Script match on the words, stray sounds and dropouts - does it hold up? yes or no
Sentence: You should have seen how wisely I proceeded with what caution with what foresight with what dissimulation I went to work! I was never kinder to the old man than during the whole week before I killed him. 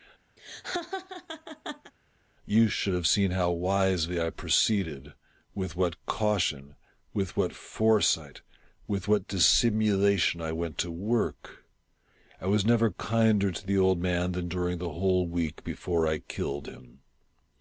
no